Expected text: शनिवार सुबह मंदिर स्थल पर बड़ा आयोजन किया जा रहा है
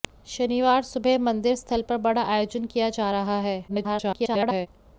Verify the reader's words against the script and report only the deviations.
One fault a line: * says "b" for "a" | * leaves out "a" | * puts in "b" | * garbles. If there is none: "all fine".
* garbles